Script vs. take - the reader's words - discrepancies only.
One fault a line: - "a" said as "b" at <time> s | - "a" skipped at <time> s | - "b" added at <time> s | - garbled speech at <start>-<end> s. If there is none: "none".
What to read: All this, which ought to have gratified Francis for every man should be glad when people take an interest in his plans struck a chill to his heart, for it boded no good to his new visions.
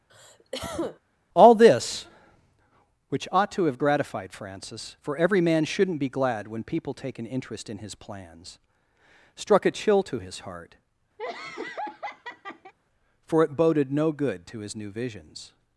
- "should" said as "shouldn't" at 5.6 s